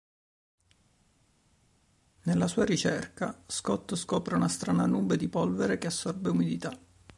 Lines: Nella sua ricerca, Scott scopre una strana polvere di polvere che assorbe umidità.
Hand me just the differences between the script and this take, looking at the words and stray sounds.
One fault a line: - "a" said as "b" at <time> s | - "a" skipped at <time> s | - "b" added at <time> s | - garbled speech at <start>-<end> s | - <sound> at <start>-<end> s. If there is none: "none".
- "polvere" said as "nube" at 4.9 s